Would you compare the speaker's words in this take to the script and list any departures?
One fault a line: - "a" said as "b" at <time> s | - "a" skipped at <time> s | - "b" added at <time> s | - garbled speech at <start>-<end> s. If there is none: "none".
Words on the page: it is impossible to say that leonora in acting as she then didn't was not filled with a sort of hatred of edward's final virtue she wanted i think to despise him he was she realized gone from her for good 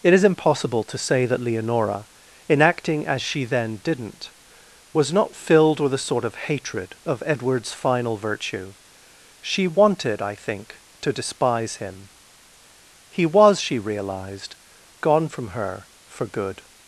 none